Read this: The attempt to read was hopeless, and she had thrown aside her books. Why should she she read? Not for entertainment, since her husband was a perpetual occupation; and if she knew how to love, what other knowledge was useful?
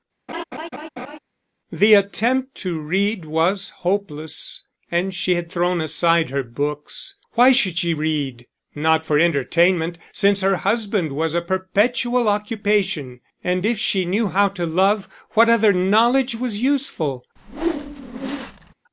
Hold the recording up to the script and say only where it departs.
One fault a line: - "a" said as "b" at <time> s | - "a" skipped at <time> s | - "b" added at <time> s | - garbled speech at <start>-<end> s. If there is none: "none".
- "she" skipped at 7.9 s